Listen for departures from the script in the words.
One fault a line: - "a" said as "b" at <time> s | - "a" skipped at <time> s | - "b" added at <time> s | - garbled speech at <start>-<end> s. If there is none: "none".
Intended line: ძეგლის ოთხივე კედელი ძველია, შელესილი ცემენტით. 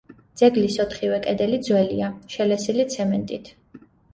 none